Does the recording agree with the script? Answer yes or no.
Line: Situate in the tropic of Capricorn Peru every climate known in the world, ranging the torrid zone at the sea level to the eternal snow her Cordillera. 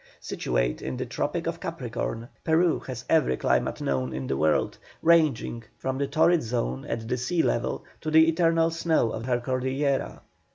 no